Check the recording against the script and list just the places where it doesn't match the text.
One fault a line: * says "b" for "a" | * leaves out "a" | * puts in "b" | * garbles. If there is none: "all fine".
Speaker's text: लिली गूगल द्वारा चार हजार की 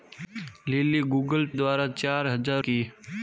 all fine